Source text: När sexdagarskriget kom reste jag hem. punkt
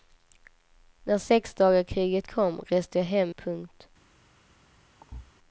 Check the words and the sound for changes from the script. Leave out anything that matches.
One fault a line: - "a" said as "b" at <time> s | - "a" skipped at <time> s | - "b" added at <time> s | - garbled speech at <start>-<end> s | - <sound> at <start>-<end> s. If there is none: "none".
- thud at 5.0-5.3 s